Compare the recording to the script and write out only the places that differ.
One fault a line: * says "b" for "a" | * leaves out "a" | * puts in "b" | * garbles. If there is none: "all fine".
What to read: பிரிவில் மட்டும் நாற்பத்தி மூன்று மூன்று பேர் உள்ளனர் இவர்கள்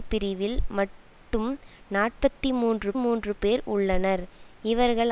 all fine